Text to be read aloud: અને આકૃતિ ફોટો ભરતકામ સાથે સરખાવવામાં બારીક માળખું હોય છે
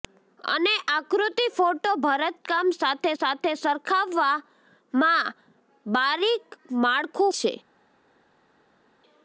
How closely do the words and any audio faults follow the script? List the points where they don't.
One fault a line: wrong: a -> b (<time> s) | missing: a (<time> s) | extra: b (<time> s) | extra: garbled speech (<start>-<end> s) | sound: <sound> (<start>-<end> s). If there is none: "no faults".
extra: સાથે (3.1 s)
missing: હોય (7.3 s)